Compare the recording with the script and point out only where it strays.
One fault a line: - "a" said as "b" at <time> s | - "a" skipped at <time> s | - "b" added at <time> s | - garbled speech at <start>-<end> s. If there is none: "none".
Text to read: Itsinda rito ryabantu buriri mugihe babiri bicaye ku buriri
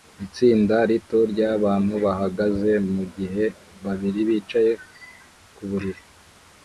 - "buriri" said as "bahagaze" at 2.0 s